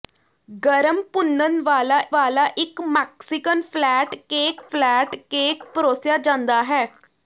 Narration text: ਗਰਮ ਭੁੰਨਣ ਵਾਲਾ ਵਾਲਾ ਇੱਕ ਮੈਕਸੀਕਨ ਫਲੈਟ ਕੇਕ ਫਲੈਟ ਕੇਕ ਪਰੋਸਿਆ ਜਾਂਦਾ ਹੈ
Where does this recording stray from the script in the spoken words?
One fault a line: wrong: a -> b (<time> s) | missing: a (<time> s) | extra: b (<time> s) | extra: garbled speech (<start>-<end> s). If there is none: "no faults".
no faults